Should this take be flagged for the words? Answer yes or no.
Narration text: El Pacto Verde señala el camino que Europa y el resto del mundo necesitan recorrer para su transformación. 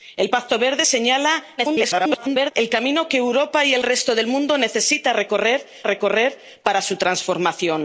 yes